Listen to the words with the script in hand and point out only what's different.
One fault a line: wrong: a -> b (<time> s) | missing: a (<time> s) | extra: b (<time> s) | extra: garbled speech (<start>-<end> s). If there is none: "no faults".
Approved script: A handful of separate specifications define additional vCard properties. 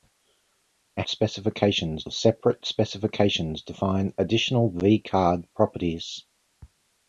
wrong: handful -> specifications (1.1 s)